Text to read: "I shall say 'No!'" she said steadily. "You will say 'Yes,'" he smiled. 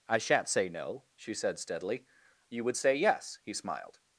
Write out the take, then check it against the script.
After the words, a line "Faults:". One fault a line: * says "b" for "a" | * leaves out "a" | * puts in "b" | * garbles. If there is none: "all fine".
"I shan't say 'No!'" she said steadily. "You would say 'Yes,'" he smiled.
Faults:
* says "shan't" for "shall"
* says "would" for "will"